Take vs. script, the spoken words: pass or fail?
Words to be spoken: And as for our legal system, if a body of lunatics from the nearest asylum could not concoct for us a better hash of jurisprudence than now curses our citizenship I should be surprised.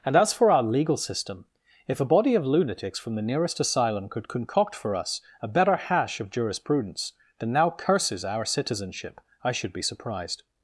fail